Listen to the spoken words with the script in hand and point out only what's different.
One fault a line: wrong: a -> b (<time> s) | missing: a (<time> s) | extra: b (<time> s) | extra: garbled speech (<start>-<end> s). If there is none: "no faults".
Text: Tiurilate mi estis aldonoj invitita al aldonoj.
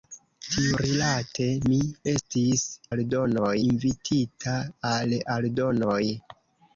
no faults